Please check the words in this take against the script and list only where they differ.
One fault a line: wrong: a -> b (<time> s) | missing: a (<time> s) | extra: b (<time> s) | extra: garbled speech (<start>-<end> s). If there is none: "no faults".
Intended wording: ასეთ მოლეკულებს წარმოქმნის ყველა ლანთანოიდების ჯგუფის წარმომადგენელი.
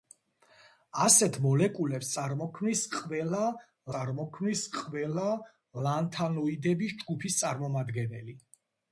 extra: წარმოქმნის ყველა (3.9 s)